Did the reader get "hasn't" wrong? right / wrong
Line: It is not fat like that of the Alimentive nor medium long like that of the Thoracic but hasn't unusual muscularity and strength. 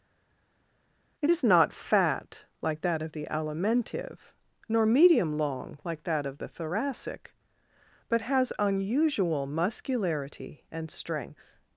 wrong